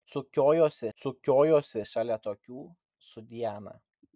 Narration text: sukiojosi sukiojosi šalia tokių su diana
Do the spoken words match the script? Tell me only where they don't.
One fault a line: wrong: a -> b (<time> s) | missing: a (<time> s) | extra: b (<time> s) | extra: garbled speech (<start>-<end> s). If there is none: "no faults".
no faults